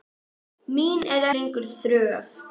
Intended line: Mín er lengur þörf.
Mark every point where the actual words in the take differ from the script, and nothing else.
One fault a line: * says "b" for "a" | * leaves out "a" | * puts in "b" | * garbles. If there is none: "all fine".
all fine